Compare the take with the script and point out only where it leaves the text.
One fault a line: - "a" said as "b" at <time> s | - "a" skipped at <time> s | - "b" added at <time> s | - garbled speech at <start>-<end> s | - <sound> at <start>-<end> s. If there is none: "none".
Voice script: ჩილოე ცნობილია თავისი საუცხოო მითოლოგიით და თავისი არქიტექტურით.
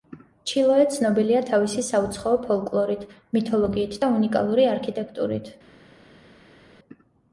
- "ფოლკლორით" added at 2.5 s
- "თავისი" said as "უნიკალური" at 4.2 s